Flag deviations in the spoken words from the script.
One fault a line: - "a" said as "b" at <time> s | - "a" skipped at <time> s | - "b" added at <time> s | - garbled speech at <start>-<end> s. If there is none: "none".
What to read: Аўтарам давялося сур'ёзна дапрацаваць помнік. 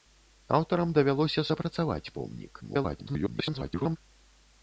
- "сур'ёзна" skipped at 1.4 s
- garbled speech at 2.6-4.0 s